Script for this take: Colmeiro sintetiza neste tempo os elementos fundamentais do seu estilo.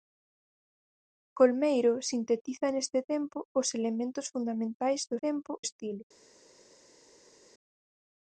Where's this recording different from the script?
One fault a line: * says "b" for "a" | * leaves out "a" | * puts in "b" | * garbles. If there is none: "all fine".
* says "tempo" for "seu"